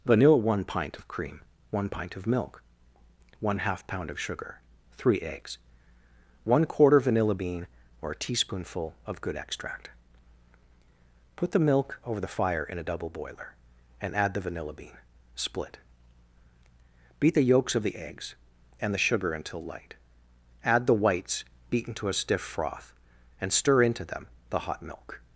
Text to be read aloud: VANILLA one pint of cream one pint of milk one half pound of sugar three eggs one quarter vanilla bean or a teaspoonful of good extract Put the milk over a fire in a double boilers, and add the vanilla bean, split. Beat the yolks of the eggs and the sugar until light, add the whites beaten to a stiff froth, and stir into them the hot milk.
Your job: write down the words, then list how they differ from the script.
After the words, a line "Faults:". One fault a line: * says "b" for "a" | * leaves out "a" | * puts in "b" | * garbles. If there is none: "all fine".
VANILLA one pint of cream one pint of milk one half pound of sugar three eggs one quarter vanilla bean or a teaspoonful of good extract Put the milk over the fire in a double boiler, and add the vanilla bean, split. Beat the yolks of the eggs and the sugar until light, add the whites beaten to a stiff froth, and stir into them the hot milk.
Faults:
* says "the" for "a"
* says "boiler" for "boilers"